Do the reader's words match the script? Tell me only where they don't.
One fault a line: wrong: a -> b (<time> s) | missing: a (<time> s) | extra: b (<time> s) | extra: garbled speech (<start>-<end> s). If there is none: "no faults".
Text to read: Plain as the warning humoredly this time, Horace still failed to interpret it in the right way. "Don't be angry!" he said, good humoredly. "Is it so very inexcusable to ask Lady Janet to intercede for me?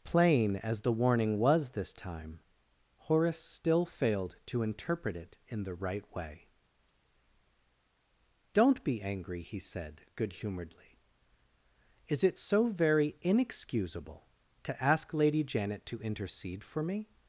wrong: humoredly -> was (1.4 s)